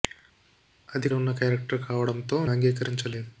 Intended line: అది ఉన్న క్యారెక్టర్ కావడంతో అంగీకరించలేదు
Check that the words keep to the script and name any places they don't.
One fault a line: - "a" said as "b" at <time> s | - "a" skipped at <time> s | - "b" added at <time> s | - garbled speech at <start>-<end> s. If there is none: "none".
none